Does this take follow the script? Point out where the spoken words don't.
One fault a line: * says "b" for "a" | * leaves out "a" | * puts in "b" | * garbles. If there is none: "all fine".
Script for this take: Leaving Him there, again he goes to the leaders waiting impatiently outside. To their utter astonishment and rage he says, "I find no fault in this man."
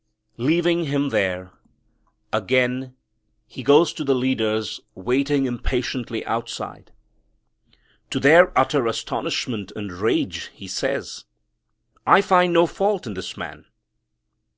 all fine